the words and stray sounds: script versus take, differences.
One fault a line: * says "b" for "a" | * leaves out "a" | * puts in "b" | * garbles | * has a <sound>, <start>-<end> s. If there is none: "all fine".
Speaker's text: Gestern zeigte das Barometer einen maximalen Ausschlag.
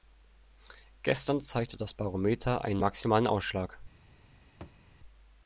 * has a thud, 4.6-4.8 s